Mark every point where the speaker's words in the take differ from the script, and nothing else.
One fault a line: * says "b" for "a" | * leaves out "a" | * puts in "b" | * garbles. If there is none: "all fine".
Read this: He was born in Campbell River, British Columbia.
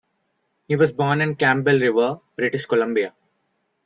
all fine